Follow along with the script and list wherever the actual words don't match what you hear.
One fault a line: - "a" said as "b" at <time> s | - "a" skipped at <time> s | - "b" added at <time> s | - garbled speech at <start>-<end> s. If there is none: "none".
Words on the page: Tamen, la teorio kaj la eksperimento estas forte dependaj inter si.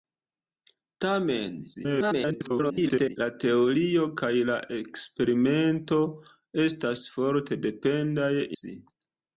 - garbled speech at 1.7-3.2 s
- "inter" skipped at 8.3 s